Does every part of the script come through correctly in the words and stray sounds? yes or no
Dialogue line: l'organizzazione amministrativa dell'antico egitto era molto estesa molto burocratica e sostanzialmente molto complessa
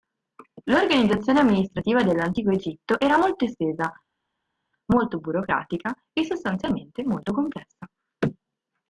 yes